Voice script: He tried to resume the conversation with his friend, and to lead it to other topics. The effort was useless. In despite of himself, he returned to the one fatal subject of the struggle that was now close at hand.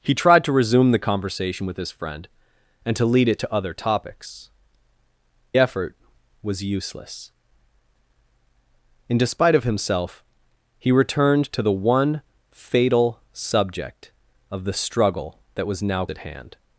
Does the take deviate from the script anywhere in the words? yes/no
yes